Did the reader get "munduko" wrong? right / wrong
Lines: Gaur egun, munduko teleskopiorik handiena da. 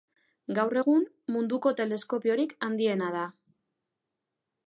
right